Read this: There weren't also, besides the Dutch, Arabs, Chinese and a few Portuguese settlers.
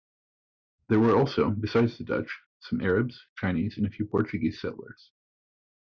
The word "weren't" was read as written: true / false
false